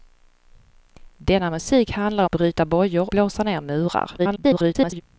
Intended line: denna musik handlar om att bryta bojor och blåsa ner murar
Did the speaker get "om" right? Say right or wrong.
wrong